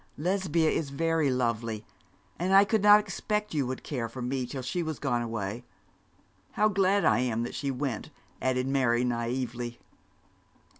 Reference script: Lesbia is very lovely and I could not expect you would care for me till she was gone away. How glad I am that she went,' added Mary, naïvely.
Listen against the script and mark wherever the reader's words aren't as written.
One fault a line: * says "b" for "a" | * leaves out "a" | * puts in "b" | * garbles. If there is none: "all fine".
all fine